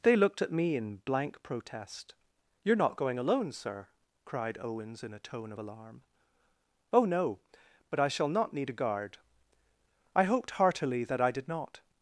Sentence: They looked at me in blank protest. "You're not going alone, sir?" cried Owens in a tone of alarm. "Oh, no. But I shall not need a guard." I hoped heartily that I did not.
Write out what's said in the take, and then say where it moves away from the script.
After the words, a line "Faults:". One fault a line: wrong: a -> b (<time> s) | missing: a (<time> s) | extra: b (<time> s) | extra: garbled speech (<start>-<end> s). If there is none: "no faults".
They looked at me in blank protest. "You're not going alone, sir?" cried Owens in a tone of alarm. "Oh, no. But I shall not need a guard." I hoped heartily that I did not.
Faults:
no faults